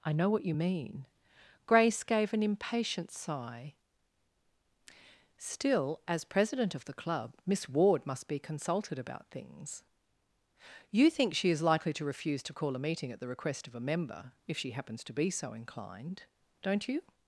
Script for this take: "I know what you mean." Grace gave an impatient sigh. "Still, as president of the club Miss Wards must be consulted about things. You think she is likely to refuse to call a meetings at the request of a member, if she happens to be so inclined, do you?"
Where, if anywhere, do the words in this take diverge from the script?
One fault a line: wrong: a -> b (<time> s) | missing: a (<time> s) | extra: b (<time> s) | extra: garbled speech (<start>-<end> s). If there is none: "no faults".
wrong: Wards -> Ward (7.7 s)
wrong: meetings -> meeting (12.8 s)
wrong: do -> don't (16.6 s)